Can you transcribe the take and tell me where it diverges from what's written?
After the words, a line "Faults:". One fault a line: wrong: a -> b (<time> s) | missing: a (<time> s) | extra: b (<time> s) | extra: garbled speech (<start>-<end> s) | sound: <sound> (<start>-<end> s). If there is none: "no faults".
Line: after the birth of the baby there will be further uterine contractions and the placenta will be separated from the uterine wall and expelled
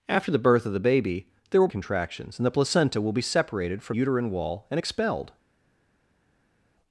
after the birth of the baby there will contractions and the placenta will be separated from uterine wall and expelled
Faults:
missing: be further uterine (1.7 s)
missing: the (4.0 s)